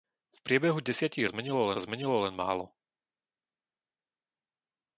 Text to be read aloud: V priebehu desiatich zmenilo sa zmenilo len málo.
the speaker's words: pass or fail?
pass